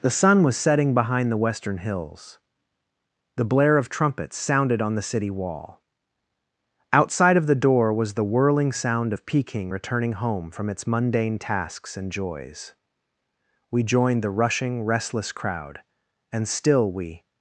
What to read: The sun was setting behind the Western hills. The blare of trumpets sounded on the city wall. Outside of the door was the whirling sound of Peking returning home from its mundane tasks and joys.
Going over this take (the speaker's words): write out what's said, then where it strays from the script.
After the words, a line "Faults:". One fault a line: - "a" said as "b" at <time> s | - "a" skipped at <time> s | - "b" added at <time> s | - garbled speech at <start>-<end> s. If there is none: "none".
The sun was setting behind the Western hills. The blare of trumpets sounded on the city wall. Outside of the door was the whirling sound of Peking returning home from its mundane tasks and joys. We joined the rushing, restless crowd and still we
Faults:
- "We joined the rushing restless crowd and still we" added at 13.7 s